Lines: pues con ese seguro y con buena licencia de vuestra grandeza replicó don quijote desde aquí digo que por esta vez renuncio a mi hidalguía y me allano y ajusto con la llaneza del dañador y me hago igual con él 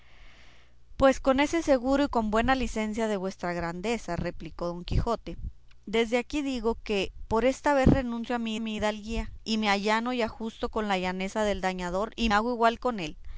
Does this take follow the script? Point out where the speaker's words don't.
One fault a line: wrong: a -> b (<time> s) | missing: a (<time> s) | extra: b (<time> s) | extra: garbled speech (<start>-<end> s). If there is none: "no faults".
extra: mi (8.6 s)
missing: me (12.3 s)